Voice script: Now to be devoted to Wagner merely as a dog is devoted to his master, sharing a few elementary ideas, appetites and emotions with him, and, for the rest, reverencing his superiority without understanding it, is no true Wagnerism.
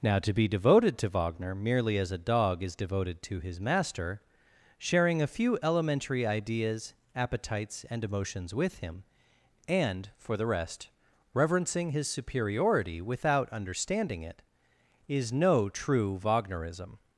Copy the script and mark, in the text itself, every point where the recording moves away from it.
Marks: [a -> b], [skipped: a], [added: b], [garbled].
Now to be devoted to Wagner merely as a dog is devoted to his master, sharing a few elementary ideas, appetites and emotions with him, and, for the rest, reverencing his superiority without understanding it, is no true Wagnerism.